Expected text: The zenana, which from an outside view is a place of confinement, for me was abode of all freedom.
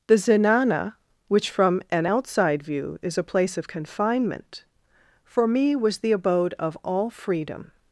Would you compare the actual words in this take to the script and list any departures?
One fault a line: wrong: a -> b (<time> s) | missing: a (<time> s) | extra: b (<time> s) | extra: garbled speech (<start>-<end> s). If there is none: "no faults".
extra: the (6.0 s)